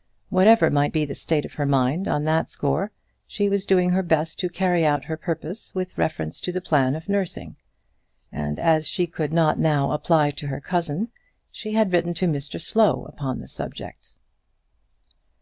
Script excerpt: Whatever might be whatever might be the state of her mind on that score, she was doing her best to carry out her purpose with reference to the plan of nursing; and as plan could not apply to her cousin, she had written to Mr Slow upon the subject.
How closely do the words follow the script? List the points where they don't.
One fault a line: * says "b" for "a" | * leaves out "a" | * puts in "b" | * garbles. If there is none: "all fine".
* leaves out "whatever might be"
* says "she" for "plan"
* puts in "now"